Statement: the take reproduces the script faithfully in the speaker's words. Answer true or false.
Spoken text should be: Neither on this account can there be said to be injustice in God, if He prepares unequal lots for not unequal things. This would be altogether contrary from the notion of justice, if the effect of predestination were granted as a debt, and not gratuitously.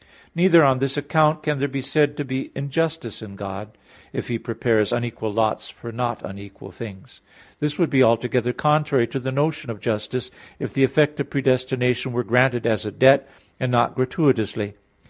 false